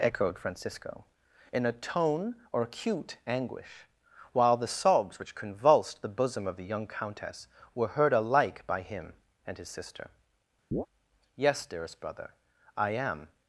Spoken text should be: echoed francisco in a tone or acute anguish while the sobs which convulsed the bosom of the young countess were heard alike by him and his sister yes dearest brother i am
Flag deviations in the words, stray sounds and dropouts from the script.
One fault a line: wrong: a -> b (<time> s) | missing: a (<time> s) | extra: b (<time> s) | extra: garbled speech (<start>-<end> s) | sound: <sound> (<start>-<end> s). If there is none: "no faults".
sound: chirp (10.7-10.9 s)